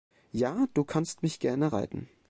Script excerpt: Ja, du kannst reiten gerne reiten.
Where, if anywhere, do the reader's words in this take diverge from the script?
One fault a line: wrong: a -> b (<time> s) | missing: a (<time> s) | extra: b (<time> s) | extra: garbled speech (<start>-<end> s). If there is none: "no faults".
wrong: reiten -> mich (1.2 s)